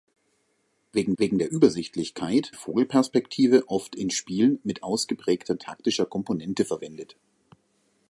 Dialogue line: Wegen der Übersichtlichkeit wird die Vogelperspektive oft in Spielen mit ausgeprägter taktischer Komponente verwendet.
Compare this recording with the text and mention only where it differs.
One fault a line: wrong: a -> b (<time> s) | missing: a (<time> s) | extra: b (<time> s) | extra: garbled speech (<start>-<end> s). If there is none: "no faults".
extra: wegen (1.2 s)
missing: wird (2.5 s)